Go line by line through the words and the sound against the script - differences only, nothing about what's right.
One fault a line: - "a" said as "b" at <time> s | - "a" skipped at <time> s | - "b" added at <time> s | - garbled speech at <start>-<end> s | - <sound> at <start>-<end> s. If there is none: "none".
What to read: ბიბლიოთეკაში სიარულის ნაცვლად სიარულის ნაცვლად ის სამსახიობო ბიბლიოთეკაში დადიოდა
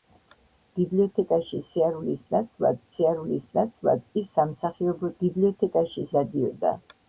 none